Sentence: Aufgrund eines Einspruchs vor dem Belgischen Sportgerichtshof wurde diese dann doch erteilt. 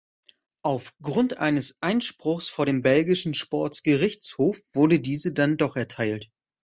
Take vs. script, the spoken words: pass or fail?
pass